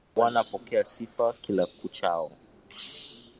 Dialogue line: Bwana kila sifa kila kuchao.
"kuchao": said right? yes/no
yes